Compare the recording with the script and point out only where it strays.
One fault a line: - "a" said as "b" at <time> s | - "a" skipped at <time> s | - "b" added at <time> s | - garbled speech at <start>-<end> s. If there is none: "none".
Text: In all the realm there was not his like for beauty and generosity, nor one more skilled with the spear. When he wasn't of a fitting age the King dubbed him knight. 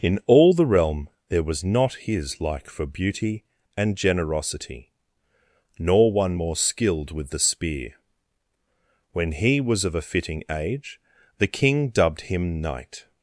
- "wasn't" said as "was" at 9.6 s